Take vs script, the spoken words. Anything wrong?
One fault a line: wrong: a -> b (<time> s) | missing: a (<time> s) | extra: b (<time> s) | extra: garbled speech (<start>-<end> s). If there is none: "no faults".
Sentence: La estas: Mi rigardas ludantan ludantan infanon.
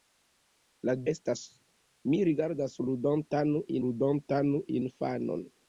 no faults